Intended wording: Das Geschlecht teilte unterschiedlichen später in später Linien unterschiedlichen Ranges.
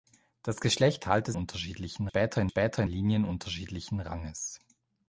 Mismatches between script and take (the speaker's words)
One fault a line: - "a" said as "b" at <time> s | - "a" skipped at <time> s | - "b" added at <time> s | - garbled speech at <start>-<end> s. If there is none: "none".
none